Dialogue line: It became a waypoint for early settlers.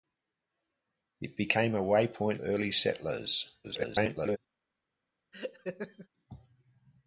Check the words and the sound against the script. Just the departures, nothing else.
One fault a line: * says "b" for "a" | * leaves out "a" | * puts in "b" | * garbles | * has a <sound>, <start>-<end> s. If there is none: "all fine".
* leaves out "for"
* garbles
* has a laugh, 5.3-6.1 s